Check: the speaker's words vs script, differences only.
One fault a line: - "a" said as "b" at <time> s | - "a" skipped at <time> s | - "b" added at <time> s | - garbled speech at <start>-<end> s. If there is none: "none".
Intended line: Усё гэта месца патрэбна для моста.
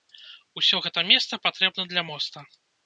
none